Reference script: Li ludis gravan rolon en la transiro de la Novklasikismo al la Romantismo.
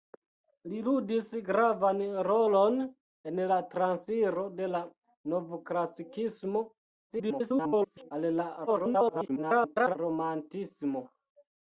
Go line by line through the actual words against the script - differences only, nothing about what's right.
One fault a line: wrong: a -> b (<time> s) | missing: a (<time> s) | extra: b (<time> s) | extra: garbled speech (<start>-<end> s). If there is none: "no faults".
extra: garbled speech (7.1-8.1 s)
extra: garbled speech (8.7-10.0 s)